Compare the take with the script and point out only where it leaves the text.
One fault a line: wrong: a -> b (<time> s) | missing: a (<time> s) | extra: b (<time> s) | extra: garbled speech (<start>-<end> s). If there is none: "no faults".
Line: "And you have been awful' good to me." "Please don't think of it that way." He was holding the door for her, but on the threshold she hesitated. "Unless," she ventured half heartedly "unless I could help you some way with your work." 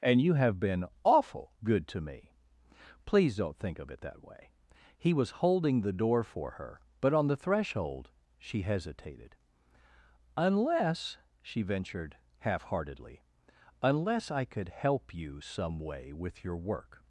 no faults